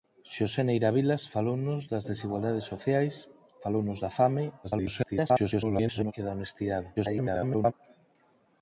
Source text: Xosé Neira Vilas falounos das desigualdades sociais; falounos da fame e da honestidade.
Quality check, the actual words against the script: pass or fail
fail